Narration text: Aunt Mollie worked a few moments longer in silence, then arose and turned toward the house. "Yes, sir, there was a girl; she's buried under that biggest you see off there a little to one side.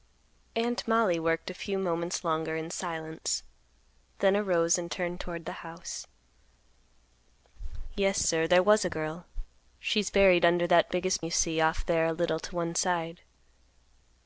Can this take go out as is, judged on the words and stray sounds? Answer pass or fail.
pass